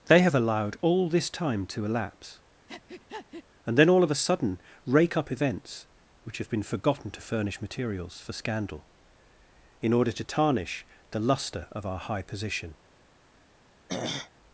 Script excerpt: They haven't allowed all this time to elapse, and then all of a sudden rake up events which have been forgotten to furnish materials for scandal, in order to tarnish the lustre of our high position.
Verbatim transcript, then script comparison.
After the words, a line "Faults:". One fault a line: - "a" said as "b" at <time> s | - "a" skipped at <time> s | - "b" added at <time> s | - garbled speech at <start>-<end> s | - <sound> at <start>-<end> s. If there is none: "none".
They have allowed all this time to elapse, and then all of a sudden rake up events which have been forgotten to furnish materials for scandal, in order to tarnish the lustre of our high position.
Faults:
- "haven't" said as "have" at 0.2 s
- breath at 2.7-3.4 s
- throat clearing at 13.9-14.3 s